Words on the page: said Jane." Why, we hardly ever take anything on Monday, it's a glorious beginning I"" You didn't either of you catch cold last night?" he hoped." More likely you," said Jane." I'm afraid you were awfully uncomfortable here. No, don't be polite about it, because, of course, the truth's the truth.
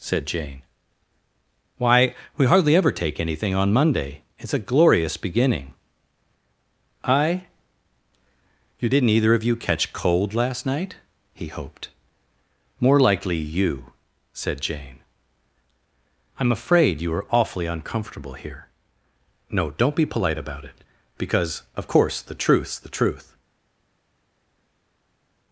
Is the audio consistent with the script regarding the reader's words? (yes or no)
no